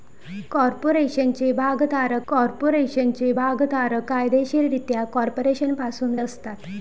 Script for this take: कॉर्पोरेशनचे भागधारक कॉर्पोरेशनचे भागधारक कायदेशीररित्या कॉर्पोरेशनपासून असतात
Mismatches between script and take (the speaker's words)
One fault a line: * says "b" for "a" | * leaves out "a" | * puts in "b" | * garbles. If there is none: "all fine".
all fine